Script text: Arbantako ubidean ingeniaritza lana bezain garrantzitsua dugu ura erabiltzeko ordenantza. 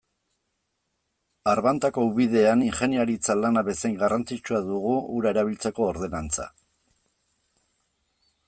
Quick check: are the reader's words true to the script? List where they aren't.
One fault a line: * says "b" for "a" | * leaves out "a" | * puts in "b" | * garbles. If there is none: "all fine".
all fine